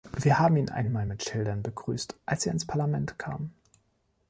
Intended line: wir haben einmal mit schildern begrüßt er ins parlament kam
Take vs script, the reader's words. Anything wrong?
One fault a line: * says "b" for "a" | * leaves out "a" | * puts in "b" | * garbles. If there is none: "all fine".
* puts in "ihn"
* puts in "als"